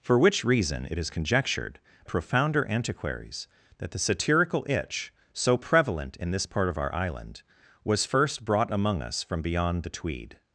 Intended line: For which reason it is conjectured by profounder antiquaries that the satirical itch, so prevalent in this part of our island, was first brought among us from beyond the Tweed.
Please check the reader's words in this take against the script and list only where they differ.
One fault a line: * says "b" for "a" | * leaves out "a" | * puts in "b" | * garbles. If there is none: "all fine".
* leaves out "by"